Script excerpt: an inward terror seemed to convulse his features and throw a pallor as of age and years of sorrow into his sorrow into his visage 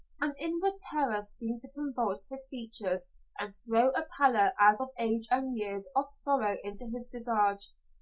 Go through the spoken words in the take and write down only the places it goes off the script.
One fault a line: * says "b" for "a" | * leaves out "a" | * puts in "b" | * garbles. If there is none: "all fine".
* leaves out "sorrow into his"